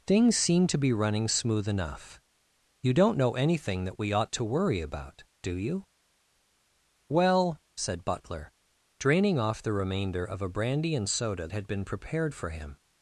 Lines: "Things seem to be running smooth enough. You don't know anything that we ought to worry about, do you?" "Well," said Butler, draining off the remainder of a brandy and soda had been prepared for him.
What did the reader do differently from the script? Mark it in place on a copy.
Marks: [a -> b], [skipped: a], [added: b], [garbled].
"Things seem to be running smooth enough. You don't know anything that we ought to worry about, do you?" "Well," said Butler, draining off the remainder of a brandy and soda had been prepared for him.